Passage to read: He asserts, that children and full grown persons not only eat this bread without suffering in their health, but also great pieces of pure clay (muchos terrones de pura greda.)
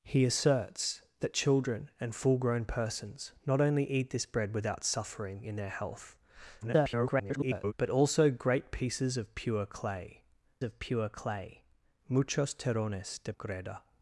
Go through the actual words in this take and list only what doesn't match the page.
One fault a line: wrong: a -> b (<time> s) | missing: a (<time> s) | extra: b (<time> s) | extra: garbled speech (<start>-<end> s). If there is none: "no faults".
extra: garbled speech (6.6-7.7 s)
extra: of pure clay (10.6 s)
missing: pura (13.3 s)